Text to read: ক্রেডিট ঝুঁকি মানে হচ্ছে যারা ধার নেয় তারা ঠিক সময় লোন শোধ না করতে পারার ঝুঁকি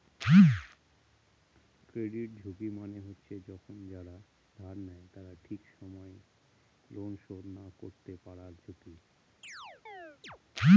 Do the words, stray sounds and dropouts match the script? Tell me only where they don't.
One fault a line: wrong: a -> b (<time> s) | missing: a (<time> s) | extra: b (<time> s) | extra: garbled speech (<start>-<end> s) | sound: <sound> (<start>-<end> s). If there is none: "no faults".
extra: যখন (3.5 s)
sound: chirp (9.4-10.4 s)